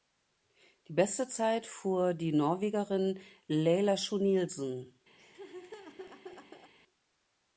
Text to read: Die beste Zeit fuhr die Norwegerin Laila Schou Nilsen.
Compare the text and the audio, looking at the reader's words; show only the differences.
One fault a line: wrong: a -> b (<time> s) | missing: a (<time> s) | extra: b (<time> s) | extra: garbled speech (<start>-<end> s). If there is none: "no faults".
no faults